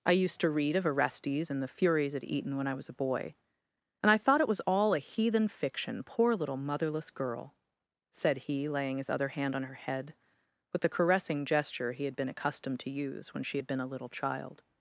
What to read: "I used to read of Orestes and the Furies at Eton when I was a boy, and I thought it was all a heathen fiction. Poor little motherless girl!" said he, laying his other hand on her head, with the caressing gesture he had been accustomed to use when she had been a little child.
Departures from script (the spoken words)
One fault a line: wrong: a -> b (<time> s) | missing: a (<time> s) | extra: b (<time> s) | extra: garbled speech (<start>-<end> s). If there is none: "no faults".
no faults